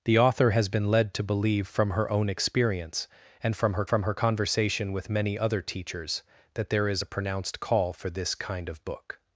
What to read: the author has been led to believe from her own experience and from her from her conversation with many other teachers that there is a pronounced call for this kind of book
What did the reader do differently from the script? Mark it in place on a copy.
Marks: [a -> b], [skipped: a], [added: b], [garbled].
the author has been led to believe from her own experience and from her from her conversation with many other teachers that there is a pronounced call for this kind of book